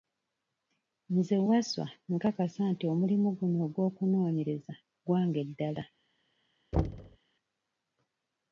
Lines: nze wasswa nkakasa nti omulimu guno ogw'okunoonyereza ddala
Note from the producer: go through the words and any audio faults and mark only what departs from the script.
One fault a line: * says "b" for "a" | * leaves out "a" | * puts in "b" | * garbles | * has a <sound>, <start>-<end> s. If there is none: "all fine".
* puts in "gwange"
* has a thud, 6.7-7.2 s